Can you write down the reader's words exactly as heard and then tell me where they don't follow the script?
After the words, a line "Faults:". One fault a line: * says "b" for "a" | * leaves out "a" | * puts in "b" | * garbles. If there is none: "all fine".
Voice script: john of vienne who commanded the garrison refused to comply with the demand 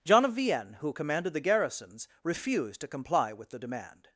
john of vienne who commanded the garrisons refused to comply with the demand
Faults:
* says "garrisons" for "garrison"